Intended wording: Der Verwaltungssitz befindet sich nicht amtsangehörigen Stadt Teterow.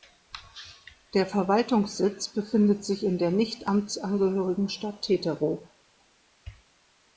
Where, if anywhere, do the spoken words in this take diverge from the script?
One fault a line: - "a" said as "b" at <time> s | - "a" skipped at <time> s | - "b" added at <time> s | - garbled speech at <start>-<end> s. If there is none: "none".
- "in der" added at 3.0 s